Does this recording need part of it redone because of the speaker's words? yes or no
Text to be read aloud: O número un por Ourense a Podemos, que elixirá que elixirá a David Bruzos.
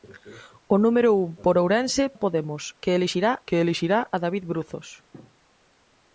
no